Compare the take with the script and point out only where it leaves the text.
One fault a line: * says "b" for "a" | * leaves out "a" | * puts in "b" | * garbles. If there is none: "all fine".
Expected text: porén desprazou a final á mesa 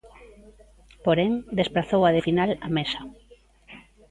all fine